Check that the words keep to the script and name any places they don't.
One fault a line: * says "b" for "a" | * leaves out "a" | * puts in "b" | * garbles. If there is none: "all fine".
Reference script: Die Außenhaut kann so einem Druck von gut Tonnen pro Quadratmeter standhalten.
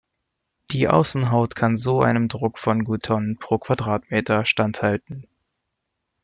all fine